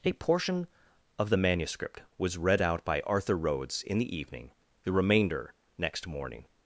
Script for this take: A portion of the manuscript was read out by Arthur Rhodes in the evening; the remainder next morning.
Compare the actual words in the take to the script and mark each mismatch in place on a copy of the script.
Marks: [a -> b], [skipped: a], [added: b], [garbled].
A portion of the manuscript was read out by Arthur Rhodes in the evening; the remainder next morning.